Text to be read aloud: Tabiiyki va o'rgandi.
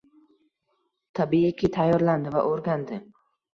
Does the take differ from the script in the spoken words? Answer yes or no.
yes